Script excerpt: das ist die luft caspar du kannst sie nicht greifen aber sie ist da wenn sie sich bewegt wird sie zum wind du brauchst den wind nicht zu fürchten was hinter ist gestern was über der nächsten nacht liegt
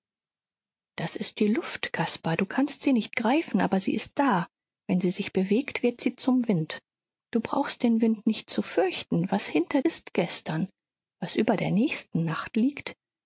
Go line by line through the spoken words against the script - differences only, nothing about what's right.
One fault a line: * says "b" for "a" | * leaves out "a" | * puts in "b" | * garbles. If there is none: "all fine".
all fine